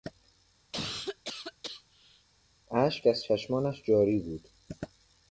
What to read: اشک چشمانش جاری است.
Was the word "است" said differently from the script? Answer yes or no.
yes